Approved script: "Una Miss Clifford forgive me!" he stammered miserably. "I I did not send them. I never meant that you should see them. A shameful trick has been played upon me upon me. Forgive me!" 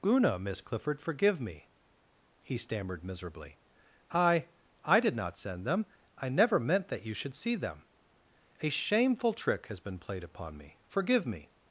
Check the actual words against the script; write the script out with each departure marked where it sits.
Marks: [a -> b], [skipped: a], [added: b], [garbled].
"Una Miss Clifford forgive me!" he stammered miserably. "I I did not send them. I never meant that you should see them. A shameful trick has been played upon me [skipped: upon me.] Forgive me!"